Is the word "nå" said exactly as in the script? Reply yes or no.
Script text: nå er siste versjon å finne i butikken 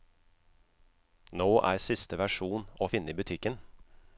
yes